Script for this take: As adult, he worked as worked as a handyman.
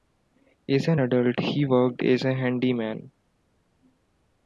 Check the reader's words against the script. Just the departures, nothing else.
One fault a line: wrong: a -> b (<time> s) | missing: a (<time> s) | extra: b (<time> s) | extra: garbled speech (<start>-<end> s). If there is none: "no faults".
extra: an (0.9 s)
missing: worked as (2.2 s)